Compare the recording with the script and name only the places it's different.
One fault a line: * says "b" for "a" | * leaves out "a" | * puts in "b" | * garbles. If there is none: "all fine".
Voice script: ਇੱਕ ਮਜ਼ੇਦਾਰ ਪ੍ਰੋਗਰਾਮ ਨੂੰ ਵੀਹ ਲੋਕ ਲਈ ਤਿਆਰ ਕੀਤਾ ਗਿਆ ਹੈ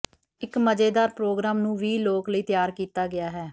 all fine